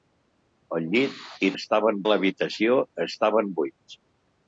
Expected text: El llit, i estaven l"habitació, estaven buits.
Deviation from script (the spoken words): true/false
false